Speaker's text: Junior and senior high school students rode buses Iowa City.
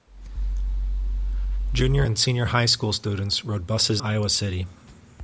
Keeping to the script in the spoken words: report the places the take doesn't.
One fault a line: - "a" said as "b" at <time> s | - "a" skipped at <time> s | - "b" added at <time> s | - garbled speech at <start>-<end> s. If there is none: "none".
none